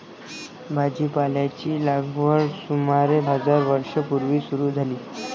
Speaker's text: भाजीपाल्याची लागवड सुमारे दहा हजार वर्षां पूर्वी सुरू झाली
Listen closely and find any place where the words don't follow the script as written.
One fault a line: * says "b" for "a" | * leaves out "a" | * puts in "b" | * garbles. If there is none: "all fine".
* leaves out "दहा"